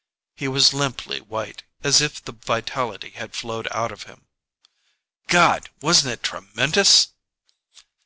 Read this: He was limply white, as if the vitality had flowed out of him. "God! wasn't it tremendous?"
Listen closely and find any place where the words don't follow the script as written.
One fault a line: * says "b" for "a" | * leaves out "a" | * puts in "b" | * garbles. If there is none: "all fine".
all fine